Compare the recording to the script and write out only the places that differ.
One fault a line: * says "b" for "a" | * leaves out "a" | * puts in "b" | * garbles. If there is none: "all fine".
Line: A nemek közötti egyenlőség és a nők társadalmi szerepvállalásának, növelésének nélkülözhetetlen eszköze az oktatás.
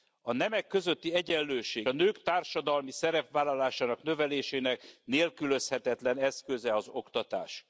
* leaves out "és"